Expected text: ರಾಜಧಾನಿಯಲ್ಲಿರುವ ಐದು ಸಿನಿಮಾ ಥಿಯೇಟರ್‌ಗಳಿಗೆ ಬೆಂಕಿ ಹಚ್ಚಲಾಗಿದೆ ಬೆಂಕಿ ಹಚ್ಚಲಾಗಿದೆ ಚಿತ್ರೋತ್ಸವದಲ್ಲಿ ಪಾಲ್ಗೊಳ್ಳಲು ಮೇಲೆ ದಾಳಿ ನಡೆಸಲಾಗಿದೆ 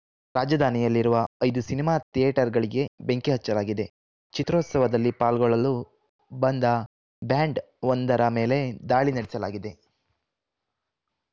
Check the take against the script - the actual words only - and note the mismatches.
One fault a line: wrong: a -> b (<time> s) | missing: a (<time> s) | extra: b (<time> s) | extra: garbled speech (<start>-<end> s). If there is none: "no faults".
wrong: ಬೆಂಕಿ ಹಚ್ಚಲಾಗಿದೆ ಚಿತ್ರೋತ್ಸವದಲ್ಲಿ ಪಾಲ್ಗೊಳ್ಳಲು -> ಚಿತ್ರೋತ್ಸವದಲ್ಲಿ ಪಾಲ್ಗೊಳ್ಳಲು ಬಂದ ಬ್ಯಾಂಡ್ ಒಂದರ (4.3 s)